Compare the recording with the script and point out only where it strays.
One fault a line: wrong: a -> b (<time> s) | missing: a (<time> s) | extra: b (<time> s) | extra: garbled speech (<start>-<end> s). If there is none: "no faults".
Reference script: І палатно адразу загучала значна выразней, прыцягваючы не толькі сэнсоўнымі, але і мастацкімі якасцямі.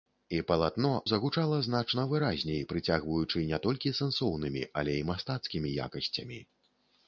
missing: адразу (0.9 s)